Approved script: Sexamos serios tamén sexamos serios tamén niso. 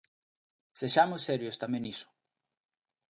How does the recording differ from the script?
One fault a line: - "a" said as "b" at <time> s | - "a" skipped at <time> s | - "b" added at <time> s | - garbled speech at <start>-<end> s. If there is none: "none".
- "sexamos serios tamén" skipped at 1.8 s